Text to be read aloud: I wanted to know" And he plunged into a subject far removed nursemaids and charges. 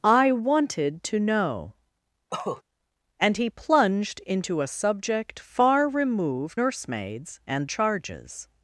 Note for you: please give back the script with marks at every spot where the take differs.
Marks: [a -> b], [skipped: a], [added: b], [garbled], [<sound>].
I wanted to know" [cough] And he plunged into a subject far removed nursemaids and charges.